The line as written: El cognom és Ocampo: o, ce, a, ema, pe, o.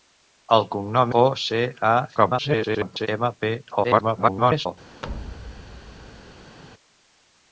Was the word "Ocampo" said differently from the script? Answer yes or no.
yes